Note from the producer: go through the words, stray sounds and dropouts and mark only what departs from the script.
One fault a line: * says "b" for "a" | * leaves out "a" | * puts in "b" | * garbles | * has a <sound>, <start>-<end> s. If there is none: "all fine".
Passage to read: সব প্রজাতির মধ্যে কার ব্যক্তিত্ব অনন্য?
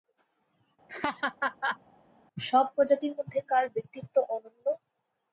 * has a laugh, 0.9-1.8 s